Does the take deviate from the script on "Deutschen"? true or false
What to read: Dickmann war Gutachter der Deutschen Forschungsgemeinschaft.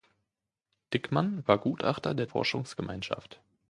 true